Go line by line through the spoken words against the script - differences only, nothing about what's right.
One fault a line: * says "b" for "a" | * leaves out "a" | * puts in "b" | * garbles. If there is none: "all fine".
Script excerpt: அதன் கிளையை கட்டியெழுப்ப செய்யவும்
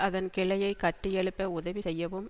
* puts in "உதவி"